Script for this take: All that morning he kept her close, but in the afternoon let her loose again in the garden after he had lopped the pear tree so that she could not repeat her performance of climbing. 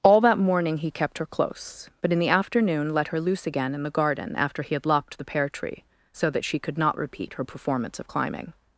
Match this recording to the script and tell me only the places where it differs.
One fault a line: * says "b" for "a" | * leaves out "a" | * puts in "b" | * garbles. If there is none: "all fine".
all fine